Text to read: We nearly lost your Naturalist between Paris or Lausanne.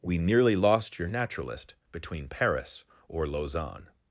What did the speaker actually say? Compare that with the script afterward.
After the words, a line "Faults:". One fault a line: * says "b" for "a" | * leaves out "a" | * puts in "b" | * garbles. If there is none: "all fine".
We nearly lost your Naturalist between Paris or Lausanne.
Faults:
all fine